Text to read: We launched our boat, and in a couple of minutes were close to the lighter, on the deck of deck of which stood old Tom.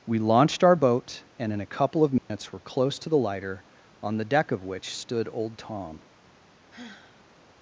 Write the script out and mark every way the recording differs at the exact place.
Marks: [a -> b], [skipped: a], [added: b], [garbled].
We launched our boat, and in a couple of minutes were close to the lighter, on the deck of [skipped: deck of] which stood old Tom.